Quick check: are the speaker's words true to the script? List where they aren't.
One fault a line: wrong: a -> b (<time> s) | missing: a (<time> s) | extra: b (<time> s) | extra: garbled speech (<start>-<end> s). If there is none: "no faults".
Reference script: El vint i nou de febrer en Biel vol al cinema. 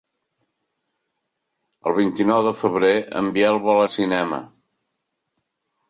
no faults